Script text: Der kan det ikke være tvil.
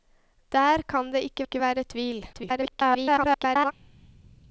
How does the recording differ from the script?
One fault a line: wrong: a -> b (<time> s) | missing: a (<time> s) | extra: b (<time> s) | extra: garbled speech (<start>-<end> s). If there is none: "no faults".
extra: ikke (1.4 s)
extra: garbled speech (2.3-3.7 s)